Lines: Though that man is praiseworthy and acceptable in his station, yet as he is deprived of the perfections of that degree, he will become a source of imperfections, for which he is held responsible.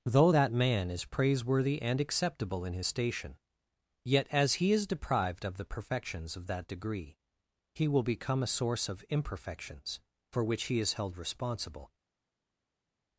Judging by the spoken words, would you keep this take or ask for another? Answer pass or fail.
pass